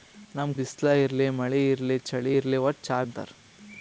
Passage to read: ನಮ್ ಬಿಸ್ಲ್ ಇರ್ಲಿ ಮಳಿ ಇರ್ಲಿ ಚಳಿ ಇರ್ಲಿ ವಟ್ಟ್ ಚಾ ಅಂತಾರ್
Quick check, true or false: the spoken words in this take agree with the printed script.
true